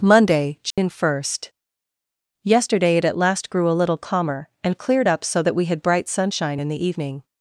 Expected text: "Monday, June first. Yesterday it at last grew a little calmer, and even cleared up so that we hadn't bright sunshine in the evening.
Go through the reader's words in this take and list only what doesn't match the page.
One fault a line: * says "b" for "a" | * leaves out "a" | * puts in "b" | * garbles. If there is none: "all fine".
* leaves out "even"
* says "had" for "hadn't"